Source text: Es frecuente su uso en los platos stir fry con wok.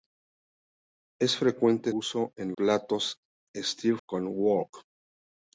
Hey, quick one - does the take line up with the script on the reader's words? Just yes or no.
no